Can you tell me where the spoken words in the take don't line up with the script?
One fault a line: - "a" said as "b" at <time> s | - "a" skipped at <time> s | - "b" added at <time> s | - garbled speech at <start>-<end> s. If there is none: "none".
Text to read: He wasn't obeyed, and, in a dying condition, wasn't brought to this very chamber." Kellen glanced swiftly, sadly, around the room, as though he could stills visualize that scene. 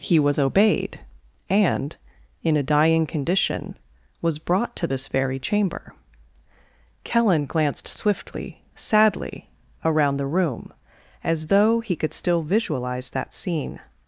- "wasn't" said as "was" at 0.2 s
- "wasn't" said as "was" at 4.2 s
- "stills" said as "still" at 12.1 s